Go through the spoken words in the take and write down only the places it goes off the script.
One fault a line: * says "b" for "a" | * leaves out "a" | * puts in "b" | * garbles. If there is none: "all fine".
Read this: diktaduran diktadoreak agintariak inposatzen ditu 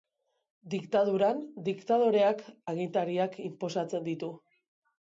all fine